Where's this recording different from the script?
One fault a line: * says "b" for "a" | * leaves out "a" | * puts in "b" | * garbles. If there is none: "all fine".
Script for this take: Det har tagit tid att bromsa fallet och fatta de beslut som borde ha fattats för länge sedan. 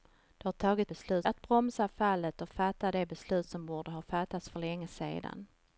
* says "beslut" for "tid"